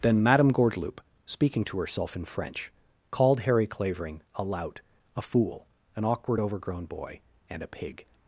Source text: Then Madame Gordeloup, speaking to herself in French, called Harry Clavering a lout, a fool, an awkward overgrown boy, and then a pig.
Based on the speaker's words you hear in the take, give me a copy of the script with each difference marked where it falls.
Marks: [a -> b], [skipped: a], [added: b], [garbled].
Then Madame Gordeloup, speaking to herself in French, called Harry Clavering a lout, a fool, an awkward overgrown boy, and [skipped: then] a pig.